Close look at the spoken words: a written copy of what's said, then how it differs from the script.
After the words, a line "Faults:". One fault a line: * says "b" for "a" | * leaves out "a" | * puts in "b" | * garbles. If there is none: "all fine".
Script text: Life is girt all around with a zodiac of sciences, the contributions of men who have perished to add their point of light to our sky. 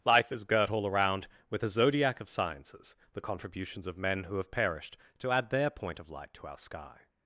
Life is girt all around with a zodiac of sciences, the contributions of men who have perished to add their point of light to our sky.
Faults:
all fine